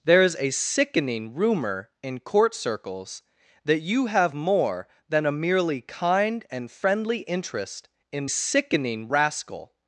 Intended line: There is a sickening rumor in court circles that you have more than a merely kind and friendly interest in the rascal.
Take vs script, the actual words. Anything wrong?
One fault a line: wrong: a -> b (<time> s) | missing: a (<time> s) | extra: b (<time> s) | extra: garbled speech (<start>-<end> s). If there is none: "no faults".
wrong: the -> sickening (8.3 s)